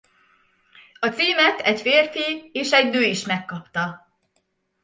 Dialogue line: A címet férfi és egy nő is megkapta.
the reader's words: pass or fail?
fail